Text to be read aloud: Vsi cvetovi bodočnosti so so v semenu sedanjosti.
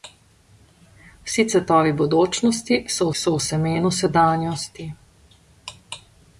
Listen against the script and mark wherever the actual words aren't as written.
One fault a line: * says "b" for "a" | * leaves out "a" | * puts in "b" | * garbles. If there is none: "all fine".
all fine